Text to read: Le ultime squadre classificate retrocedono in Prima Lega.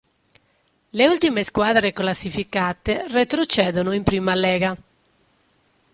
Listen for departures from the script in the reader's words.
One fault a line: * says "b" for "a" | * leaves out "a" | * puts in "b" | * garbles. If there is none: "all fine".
all fine